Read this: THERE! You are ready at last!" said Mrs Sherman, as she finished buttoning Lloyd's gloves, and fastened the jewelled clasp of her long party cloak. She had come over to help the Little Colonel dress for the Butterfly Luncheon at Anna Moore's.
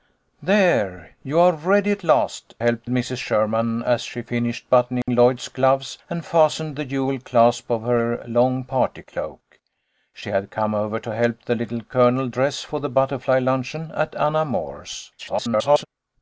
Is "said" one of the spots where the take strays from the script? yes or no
yes